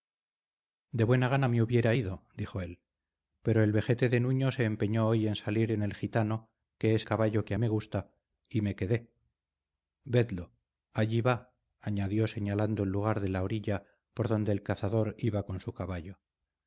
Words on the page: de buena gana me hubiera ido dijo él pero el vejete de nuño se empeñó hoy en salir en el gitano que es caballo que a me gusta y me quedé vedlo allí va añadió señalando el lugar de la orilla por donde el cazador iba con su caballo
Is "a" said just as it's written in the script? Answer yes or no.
yes